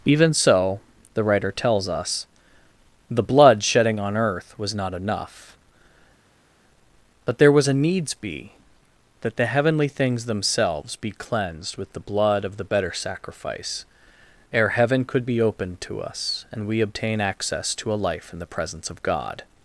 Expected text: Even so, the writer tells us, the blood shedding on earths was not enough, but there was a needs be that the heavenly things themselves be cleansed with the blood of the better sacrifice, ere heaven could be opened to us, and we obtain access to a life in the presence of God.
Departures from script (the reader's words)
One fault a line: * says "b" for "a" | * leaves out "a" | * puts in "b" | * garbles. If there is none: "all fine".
* says "earth" for "earths"